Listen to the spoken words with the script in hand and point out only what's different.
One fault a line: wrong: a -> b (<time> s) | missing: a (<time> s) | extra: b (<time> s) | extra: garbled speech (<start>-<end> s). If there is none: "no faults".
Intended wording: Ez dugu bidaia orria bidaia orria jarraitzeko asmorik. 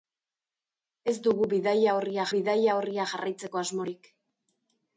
no faults